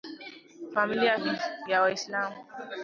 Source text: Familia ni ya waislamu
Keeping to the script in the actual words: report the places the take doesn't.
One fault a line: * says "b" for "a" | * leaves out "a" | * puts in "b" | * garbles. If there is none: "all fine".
all fine